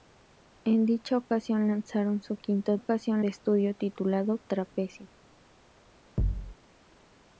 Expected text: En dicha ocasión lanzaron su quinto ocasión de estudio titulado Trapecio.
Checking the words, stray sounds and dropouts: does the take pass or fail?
fail